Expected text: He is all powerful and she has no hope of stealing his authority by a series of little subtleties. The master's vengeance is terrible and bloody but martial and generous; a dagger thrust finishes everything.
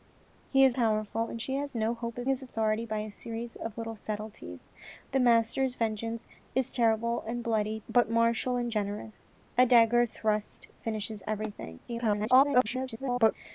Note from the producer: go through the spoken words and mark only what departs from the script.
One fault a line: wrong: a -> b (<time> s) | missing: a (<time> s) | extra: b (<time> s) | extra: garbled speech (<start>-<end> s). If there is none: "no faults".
missing: all (0.8 s)
missing: stealing (2.3 s)
extra: garbled speech (11.9-13.3 s)